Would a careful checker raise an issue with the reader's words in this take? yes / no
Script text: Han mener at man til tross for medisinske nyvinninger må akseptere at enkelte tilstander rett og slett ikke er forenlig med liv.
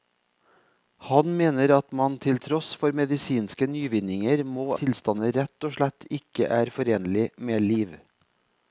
yes